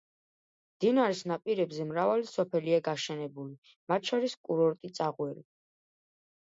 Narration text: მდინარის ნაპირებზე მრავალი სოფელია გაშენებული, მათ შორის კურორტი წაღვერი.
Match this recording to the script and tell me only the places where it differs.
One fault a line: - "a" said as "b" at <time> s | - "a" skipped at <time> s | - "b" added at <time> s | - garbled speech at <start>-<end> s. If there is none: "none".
none